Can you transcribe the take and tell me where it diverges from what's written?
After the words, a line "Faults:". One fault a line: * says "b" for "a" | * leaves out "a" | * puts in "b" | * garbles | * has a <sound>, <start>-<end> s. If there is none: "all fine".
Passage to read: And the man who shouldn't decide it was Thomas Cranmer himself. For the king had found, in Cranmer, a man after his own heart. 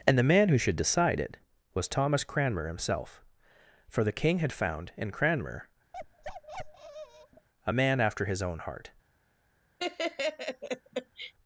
And the man who should decide it was Thomas Cranmer himself. For the king had found, in Cranmer, a man after his own heart.
Faults:
* says "should" for "shouldn't"
* has a bark, 5.9-7.5 s
* has a laugh, 9.8-11.3 s